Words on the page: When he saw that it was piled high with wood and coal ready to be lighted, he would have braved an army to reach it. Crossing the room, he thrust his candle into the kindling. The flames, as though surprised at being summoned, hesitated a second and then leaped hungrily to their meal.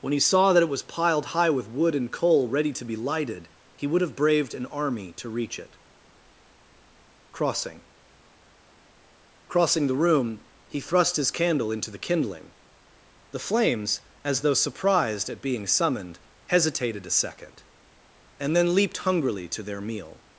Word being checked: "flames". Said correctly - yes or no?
yes